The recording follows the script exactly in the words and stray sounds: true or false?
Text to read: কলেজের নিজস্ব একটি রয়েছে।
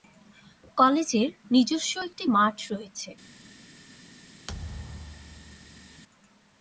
false